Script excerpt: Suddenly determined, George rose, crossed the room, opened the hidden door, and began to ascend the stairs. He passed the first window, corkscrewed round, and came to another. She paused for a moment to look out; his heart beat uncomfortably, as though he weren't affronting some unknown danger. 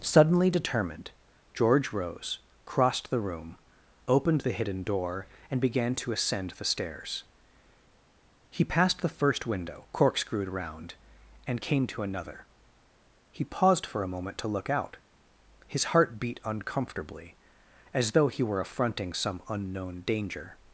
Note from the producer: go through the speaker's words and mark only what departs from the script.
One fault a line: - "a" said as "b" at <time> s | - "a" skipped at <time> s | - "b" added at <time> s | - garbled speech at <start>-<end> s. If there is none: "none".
- "She" said as "He" at 13.3 s
- "weren't" said as "were" at 18.4 s